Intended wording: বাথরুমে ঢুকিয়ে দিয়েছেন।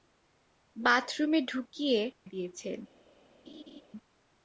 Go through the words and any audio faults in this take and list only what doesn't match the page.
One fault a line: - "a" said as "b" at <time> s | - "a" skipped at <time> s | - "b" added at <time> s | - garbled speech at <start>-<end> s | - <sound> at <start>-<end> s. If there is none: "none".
- laugh at 3.5-3.8 s